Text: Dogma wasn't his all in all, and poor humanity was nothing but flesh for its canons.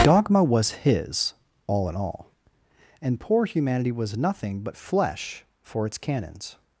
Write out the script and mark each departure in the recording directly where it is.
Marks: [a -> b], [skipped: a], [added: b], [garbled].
Dogma [wasn't -> was] his all in all, and poor humanity was nothing but flesh for its canons.